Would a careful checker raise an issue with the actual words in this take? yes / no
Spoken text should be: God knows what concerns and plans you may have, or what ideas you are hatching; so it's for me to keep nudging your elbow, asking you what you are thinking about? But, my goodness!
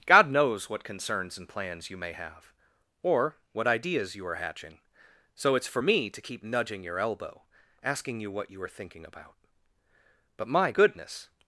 no